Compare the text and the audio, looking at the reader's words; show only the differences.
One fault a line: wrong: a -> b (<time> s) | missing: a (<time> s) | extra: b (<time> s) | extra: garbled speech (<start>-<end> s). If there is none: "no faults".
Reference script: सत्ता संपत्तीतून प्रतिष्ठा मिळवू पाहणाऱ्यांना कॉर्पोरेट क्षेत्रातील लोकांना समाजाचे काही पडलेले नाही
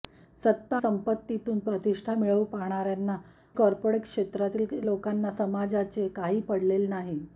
no faults